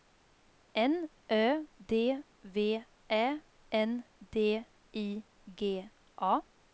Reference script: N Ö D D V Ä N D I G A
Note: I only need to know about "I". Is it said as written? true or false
true